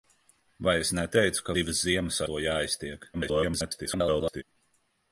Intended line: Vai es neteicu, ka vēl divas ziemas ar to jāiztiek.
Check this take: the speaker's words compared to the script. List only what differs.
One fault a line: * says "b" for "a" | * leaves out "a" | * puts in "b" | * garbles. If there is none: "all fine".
* leaves out "vēl"
* leaves out "ar"
* garbles